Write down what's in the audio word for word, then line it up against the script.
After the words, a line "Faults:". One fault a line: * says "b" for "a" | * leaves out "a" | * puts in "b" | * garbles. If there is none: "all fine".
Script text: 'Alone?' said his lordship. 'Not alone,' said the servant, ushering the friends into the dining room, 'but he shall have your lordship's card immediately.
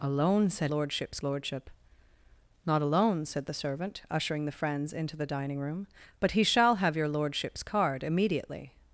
'Alone?' said lordship's lordship. 'Not alone,' said the servant, ushering the friends into the dining room, 'but he shall have your lordship's card immediately.
Faults:
* says "lordship's" for "his"